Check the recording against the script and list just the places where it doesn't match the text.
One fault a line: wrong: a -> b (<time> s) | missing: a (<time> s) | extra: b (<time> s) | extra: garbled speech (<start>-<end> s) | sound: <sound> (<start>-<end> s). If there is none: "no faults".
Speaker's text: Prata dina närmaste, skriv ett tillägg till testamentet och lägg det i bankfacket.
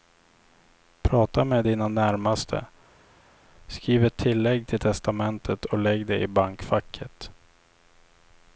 extra: med (1.4 s)